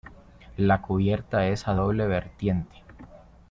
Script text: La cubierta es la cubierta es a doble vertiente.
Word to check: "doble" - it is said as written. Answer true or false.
true